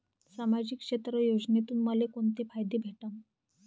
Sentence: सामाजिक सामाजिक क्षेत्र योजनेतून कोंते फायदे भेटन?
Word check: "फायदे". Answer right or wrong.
right